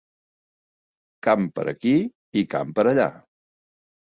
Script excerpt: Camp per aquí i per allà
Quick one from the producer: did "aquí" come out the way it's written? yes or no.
yes